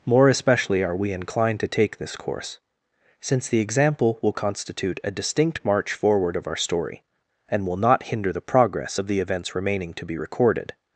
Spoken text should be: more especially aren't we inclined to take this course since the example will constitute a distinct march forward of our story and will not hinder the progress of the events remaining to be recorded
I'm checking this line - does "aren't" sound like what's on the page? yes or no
no